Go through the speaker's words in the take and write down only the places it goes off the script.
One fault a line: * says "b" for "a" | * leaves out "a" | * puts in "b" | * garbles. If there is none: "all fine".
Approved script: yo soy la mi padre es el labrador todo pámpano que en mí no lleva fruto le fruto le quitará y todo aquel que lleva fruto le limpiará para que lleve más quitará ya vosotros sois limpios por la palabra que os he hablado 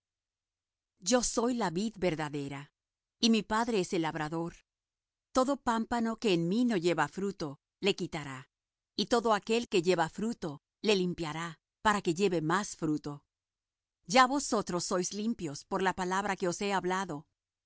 * puts in "vid verdadera y"
* leaves out "fruto le"
* says "fruto" for "quitará"